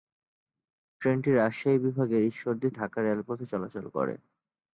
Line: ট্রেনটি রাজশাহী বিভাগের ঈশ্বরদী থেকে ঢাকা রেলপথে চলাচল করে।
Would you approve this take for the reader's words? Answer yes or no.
no